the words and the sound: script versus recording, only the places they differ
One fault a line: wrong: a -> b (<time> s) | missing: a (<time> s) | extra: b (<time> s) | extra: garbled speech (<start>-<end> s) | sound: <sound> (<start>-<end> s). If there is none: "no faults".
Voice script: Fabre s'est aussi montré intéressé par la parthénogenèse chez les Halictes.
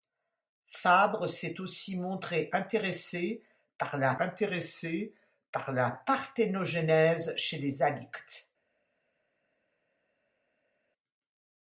extra: intéressé par la (4.2 s)